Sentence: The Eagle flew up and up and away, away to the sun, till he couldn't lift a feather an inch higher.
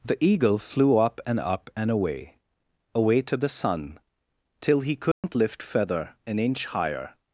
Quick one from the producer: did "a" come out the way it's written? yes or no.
no